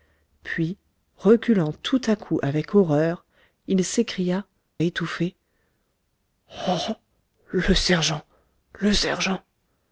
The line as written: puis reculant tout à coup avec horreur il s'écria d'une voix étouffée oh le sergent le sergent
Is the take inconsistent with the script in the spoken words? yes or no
yes